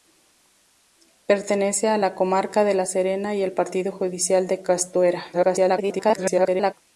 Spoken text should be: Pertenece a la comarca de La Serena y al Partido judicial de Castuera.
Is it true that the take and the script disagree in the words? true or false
true